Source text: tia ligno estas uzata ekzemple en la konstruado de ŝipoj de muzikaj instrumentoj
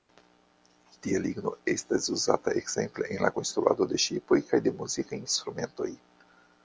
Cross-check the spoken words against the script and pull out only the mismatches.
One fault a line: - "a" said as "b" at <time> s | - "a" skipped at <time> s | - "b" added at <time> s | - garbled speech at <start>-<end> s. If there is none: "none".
- "kaj" added at 4.5 s